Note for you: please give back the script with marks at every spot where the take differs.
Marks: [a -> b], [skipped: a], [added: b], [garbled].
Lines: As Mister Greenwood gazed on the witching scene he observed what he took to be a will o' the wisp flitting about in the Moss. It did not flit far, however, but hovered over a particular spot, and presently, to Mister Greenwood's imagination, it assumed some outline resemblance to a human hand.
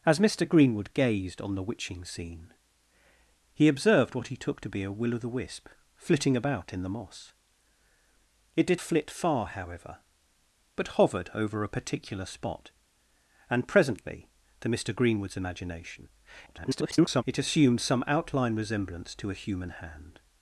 As Mister Greenwood gazed on the witching scene he observed what he took to be a will o' the wisp flitting about in the Moss. It did [skipped: not] flit far, however, but hovered over a particular spot, and presently, to Mister Greenwood's imagination, [garbled] it assumed some outline resemblance to a human hand.